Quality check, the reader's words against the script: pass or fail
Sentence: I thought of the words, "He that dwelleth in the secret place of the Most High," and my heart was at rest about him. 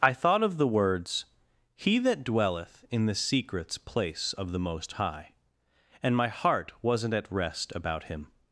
fail